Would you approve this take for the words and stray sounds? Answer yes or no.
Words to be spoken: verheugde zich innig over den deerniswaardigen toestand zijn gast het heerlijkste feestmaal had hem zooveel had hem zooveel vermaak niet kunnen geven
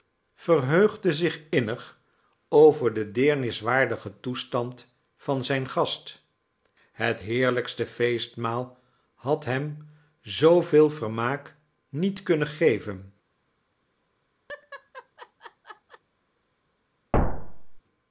no